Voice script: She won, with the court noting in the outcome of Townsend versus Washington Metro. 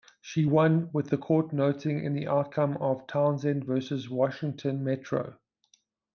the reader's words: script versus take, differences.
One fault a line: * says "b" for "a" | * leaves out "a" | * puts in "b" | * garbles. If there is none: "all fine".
all fine